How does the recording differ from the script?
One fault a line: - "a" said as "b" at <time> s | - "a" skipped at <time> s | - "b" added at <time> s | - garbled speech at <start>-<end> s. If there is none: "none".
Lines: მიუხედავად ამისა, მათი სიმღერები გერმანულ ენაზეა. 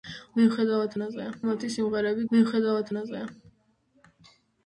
- "ამისა" said as "ენაზეა" at 1.0 s
- "გერმანულ" said as "მიუხედავად" at 2.3 s